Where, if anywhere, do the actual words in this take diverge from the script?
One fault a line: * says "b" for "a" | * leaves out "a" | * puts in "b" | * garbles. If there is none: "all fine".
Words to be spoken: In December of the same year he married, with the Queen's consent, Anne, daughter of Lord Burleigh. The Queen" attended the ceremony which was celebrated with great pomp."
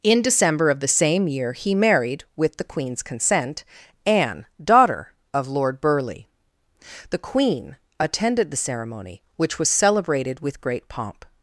all fine